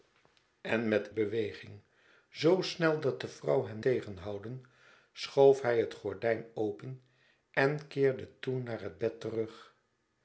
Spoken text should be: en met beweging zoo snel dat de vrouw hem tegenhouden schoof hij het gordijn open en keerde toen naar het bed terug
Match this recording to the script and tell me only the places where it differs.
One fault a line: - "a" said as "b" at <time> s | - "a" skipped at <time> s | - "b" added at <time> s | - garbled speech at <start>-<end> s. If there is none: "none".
none